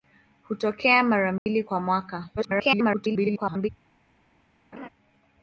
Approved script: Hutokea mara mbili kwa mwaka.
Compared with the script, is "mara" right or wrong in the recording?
right